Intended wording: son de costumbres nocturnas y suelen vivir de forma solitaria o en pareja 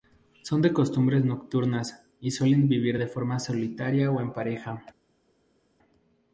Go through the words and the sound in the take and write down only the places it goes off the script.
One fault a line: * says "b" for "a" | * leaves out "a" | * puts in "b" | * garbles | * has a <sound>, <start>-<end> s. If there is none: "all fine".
all fine